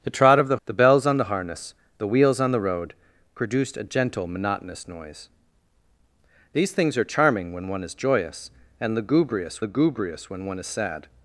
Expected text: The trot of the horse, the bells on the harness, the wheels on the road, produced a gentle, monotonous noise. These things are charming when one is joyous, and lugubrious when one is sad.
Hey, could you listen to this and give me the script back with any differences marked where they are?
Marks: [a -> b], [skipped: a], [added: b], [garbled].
The trot of the [skipped: horse,] the bells on the harness, the wheels on the road, produced a gentle, monotonous noise. These things are charming when one is joyous, and lugubrious [added: lugubrious] when one is sad.